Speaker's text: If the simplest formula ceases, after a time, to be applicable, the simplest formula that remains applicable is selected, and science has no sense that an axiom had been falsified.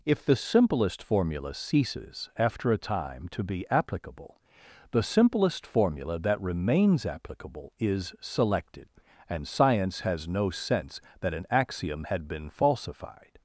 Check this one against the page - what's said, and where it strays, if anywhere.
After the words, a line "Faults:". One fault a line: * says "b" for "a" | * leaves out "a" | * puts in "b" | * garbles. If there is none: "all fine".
If the simplest formula ceases, after a time, to be applicable, the simplest formula that remains applicable is selected, and science has no sense that an axiom had been falsified.
Faults:
all fine